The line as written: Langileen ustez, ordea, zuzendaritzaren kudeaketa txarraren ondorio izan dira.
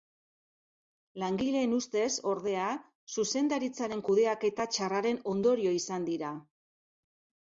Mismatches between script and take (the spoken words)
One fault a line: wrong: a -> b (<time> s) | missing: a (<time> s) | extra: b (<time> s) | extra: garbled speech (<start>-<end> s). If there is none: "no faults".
no faults